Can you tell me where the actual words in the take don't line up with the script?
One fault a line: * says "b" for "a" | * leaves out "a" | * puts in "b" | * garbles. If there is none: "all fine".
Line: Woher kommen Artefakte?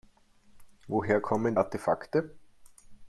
all fine